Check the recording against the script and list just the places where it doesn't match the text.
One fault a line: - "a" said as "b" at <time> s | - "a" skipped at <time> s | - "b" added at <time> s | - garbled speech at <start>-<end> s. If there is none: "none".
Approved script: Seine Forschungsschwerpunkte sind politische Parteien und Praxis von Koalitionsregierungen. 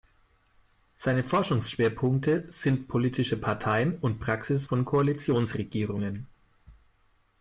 none